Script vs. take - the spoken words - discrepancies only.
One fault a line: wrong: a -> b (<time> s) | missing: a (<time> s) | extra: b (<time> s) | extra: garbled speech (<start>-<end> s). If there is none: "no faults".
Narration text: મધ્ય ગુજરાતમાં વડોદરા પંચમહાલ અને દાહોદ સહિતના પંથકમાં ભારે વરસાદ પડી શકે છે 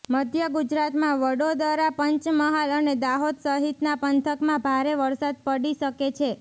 no faults